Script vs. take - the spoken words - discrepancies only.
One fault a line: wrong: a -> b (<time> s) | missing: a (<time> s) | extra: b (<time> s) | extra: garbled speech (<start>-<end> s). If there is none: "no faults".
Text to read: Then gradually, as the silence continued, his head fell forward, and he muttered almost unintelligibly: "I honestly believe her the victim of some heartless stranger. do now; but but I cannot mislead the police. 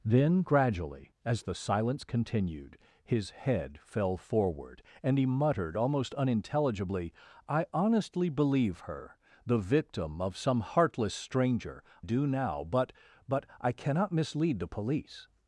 no faults